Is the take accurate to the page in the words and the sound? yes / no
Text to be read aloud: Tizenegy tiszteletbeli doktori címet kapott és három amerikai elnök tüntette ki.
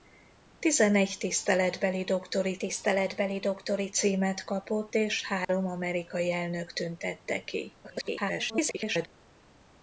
no